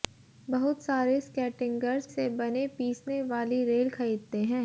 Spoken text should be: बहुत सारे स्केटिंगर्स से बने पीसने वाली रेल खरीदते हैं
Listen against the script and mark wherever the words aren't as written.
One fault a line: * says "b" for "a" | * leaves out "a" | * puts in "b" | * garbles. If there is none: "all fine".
all fine